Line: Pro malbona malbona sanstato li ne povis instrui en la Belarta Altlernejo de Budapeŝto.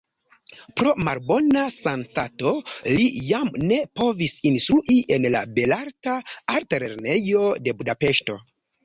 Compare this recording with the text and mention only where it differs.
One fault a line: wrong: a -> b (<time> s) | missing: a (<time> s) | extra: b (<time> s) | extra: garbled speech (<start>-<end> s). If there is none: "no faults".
missing: malbona (1.6 s)
extra: jam (3.2 s)